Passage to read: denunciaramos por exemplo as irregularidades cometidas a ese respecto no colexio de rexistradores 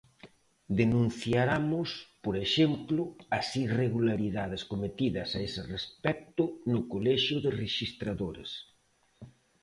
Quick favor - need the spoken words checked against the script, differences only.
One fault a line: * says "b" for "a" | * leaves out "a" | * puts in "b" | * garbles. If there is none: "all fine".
all fine